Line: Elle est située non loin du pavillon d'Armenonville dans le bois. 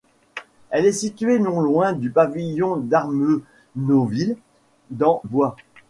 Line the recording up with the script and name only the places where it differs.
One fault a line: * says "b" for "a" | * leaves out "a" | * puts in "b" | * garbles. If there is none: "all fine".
* leaves out "le"